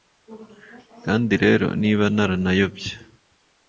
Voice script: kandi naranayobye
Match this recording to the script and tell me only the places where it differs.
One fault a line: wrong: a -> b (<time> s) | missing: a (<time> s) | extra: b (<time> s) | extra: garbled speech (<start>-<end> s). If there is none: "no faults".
extra: rero niba (1.4 s)